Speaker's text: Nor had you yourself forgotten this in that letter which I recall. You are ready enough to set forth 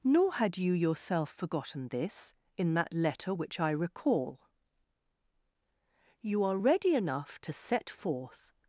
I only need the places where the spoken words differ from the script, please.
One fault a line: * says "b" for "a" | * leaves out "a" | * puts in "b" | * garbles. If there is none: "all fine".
all fine